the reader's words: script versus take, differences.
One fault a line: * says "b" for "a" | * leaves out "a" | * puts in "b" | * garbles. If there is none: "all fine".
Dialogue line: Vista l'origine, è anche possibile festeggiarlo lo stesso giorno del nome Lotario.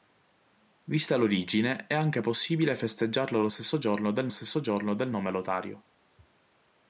* puts in "stesso giorno del"